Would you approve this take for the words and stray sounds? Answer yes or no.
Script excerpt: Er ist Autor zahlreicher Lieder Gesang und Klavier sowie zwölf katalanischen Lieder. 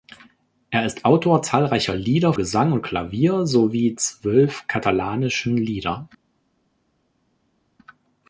yes